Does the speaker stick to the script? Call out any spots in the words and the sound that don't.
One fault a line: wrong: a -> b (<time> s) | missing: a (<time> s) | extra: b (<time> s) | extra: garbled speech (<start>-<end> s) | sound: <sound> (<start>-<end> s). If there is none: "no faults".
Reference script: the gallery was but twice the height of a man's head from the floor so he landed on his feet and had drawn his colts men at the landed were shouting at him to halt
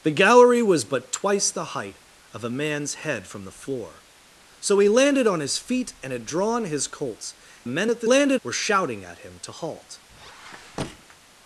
sound: squeak (10.1-11.2 s)